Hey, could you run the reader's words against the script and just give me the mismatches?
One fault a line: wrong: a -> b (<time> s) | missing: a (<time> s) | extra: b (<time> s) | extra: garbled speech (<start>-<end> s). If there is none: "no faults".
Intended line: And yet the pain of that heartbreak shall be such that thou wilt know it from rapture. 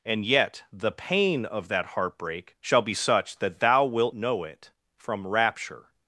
no faults